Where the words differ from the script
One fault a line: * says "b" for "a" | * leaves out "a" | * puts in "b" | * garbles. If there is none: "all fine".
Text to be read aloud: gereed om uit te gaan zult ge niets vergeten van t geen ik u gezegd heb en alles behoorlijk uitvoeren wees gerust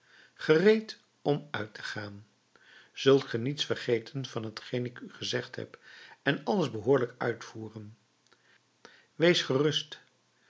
all fine